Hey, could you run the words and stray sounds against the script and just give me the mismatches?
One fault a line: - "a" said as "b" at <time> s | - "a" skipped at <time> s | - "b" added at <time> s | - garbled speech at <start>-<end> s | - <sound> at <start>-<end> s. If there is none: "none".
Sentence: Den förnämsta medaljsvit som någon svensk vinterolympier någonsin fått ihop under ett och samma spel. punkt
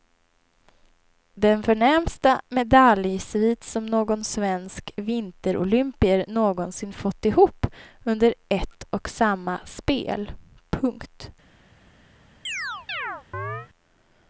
- chirp at 12.4-13.7 s